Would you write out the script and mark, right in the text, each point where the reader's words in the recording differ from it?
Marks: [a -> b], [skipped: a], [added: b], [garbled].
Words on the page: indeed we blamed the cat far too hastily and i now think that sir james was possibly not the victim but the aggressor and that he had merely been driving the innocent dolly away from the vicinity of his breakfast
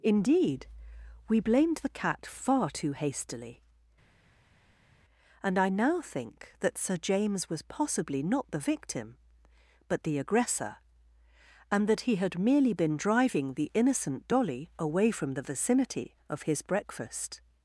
indeed we blamed the cat far too hastily and i now think that sir james was possibly not the victim but the aggressor and that he had merely been driving the innocent dolly away from the vicinity of his breakfast